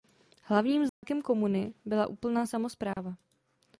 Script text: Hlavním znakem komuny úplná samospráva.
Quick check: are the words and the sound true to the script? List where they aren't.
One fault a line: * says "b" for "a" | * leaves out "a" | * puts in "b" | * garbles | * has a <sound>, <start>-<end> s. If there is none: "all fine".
* has a dropout, 0.9-1.0 s
* puts in "byla"
* has a dropout, 2.9-3.0 s